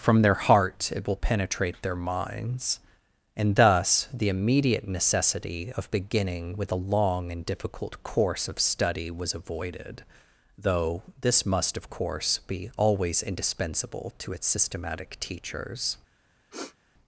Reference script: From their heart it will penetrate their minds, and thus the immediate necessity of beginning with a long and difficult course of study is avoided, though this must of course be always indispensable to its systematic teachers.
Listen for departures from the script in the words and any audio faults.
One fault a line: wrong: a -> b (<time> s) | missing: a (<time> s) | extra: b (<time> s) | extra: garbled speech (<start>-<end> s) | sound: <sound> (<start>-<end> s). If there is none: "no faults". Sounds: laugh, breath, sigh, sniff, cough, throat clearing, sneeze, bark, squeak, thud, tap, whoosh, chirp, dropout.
wrong: is -> was (9.1 s)
sound: sniff (16.5-16.8 s)